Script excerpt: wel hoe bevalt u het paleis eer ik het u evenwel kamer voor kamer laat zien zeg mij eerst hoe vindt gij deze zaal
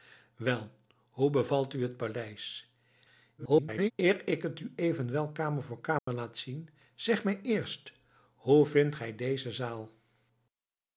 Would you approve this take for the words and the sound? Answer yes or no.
no